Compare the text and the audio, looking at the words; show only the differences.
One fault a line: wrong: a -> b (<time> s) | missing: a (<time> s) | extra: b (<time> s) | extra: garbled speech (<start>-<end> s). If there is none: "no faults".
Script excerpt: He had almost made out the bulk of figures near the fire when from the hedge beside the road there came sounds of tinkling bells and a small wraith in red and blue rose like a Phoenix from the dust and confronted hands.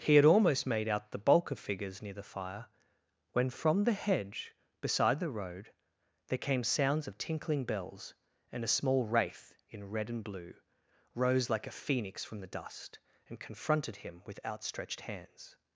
extra: him with outstretched (14.0 s)